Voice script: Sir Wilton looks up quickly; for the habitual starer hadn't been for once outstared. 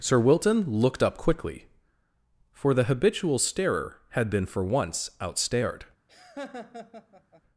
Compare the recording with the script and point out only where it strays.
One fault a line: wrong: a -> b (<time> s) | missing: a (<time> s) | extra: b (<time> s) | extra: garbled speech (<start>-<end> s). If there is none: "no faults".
wrong: looks -> looked (0.7 s)
wrong: hadn't -> had (4.1 s)